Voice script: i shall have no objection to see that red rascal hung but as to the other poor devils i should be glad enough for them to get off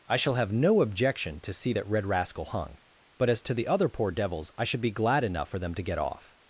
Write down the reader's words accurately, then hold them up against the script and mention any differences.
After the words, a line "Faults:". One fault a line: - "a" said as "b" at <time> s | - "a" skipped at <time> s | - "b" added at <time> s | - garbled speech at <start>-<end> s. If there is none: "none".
i shall have no objection to see that red rascal hung but as to the other poor devils i should be glad enough for them to get off
Faults:
none